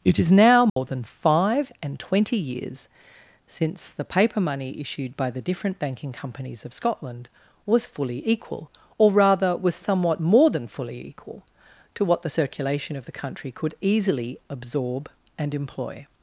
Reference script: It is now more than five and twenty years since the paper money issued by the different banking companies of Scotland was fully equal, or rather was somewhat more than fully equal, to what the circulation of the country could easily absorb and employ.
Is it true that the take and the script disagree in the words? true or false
false